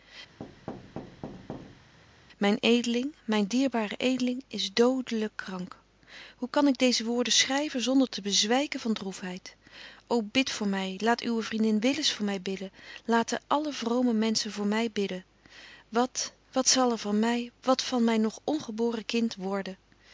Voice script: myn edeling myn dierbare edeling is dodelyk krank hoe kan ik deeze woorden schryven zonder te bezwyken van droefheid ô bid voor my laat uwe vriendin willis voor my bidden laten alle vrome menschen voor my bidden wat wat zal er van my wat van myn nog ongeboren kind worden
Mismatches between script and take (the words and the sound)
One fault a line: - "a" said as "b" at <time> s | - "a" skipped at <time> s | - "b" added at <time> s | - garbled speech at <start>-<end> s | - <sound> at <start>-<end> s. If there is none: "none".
- thud at 0.4-1.9 s